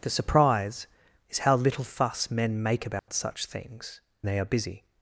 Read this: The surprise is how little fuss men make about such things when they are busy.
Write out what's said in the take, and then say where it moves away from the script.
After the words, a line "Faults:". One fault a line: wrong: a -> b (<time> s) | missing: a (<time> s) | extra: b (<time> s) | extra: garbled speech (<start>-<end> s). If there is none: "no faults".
The surprise is how little fuss men make about such things they are busy.
Faults:
missing: when (4.0 s)